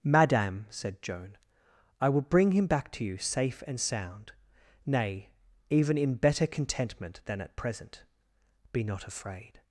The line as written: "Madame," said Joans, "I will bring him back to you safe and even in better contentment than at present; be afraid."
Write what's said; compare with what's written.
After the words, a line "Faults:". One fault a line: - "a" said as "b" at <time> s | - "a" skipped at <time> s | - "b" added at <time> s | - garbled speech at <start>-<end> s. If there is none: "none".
"Madame," said Joan, "I will bring him back to you safe and sound, nay, even in better contentment than at present; be not afraid."
Faults:
- "Joans" said as "Joan" at 1.0 s
- "sound nay" added at 3.8 s
- "not" added at 8.8 s